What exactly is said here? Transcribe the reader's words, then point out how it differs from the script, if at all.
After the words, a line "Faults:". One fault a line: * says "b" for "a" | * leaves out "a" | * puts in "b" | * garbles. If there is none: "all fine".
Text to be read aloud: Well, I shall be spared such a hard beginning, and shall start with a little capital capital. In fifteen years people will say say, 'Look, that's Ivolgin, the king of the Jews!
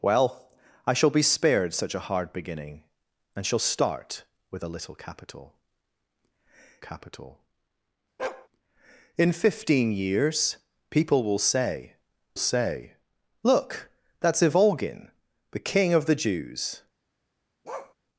Well, I shall be spared such a hard beginning, and shall start with a little capital capital. In fifteen years people will say say, 'Look, that's Ivolgin, the king of the Jews!
Faults:
all fine